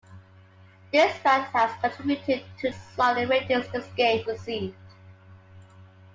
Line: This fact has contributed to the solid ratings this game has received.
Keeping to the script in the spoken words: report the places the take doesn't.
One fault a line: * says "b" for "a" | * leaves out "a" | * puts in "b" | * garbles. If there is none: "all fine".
* leaves out "the"
* leaves out "has"